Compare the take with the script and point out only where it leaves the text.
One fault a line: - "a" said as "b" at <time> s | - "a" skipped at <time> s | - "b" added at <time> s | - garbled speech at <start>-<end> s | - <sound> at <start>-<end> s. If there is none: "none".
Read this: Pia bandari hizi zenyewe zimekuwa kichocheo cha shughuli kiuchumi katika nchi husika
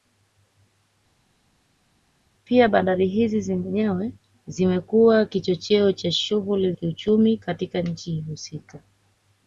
none